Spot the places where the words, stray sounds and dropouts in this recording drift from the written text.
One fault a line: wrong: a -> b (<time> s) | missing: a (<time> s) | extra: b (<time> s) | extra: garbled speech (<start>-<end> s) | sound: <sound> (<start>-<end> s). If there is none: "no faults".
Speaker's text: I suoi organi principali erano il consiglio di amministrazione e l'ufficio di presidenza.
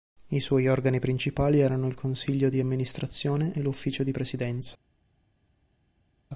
no faults